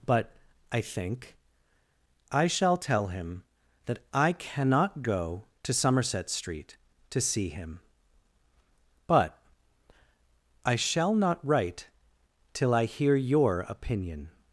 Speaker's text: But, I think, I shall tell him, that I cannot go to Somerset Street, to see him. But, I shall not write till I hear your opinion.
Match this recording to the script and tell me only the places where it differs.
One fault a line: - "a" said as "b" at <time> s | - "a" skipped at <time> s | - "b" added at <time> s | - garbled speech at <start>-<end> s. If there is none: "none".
none